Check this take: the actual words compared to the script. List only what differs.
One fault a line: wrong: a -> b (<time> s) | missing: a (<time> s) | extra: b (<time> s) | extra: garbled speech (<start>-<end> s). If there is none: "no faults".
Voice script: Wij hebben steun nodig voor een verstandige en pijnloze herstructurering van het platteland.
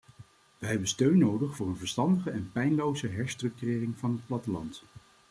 no faults